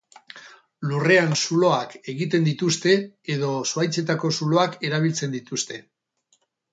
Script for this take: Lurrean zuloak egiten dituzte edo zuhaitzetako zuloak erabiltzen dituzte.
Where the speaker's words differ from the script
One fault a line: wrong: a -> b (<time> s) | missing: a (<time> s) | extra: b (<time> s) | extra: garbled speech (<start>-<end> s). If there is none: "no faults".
no faults